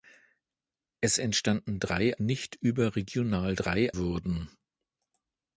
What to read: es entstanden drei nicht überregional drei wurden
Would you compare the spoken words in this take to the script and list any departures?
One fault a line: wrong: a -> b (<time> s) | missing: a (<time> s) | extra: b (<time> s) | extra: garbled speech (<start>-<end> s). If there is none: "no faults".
no faults